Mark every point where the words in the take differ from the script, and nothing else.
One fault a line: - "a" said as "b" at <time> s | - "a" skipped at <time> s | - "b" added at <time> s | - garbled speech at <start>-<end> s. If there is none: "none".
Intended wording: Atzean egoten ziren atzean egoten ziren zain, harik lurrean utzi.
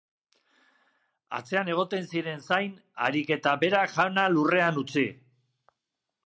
- "atzean egoten ziren zain harik" said as "zain harik eta berak jana" at 2.5 s